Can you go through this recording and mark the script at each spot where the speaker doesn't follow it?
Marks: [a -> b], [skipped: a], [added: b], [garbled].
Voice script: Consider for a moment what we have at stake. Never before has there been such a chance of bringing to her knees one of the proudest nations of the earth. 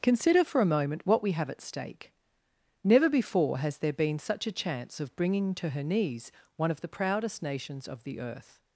Consider for a moment what we have at stake. Never before has there been such a chance of bringing to her knees one of the proudest nations of the earth.